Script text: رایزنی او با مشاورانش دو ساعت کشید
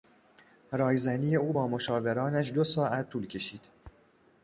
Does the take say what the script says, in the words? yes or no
no